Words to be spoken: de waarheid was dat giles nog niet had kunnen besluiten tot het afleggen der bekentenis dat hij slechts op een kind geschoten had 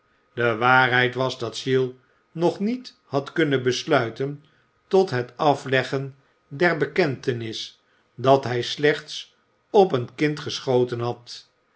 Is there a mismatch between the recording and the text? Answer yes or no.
no